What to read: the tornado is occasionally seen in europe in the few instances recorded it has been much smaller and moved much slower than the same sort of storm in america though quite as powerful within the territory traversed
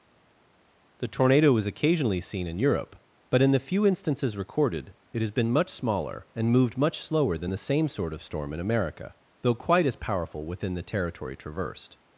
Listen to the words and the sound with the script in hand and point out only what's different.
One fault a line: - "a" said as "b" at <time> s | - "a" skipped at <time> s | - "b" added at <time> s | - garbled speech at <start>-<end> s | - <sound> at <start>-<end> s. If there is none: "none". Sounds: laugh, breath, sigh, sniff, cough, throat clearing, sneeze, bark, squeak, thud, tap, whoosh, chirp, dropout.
- "but" added at 3.3 s